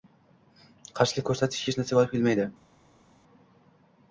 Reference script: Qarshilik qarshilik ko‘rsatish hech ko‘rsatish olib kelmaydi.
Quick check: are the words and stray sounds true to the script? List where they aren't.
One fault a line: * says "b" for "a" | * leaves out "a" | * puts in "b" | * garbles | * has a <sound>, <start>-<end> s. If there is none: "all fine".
* leaves out "qarshilik"
* says "narsaga" for "ko‘rsatish"